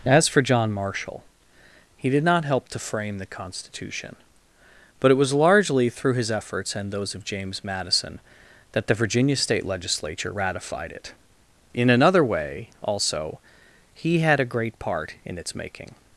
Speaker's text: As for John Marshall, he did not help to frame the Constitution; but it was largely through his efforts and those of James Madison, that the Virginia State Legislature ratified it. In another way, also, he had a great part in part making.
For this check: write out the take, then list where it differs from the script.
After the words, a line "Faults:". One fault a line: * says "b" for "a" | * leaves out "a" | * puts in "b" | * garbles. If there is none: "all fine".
As for John Marshall, he did not help to frame the Constitution; but it was largely through his efforts and those of James Madison, that the Virginia State Legislature ratified it. In another way, also, he had a great part in its making.
Faults:
* says "its" for "part"